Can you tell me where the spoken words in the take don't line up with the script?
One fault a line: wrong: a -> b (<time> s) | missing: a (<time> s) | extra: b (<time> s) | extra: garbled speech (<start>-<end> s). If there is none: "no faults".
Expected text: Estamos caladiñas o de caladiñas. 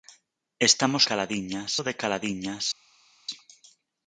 no faults